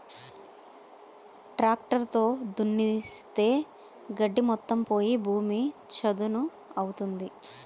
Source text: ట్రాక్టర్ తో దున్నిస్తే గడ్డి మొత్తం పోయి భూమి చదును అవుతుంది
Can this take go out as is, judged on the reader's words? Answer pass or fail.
pass